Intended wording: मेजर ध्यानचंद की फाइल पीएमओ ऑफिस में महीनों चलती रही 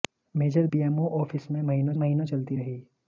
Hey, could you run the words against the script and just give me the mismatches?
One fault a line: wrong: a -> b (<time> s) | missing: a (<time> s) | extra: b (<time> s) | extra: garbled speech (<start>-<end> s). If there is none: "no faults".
missing: ध्यानचंद की फाइल (0.7 s)
extra: महीनों (2.0 s)